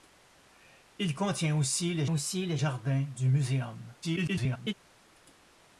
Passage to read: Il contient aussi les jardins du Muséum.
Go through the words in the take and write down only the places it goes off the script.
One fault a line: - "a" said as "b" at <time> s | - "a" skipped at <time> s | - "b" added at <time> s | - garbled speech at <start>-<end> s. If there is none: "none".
- "aussi les" added at 2.1 s
- garbled speech at 4.0-4.7 s